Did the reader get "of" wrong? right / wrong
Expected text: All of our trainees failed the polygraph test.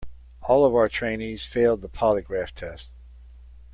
right